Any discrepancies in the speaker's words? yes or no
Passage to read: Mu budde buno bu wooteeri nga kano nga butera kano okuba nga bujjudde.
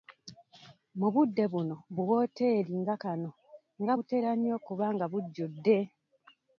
yes